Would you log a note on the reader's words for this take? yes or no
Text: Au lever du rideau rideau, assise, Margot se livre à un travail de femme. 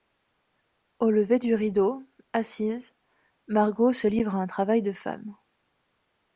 yes